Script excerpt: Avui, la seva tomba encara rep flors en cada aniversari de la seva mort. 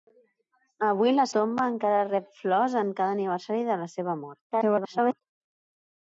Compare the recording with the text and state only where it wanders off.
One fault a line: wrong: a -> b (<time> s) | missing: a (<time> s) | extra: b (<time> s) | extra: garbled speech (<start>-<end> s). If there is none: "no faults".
missing: seva (1.2 s)
extra: garbled speech (4.5-5.2 s)